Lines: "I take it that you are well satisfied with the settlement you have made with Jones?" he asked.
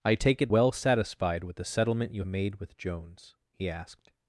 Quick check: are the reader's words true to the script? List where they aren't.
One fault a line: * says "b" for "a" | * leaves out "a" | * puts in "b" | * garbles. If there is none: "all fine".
* leaves out "that you are"
* leaves out "have"